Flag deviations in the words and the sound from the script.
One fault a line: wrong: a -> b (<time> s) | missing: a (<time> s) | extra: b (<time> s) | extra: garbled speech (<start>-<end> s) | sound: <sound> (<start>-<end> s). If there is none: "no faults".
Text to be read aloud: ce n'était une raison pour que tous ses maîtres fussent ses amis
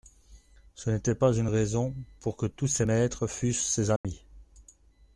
extra: pas (1.1 s)
sound: dropout (4.0-4.0 s)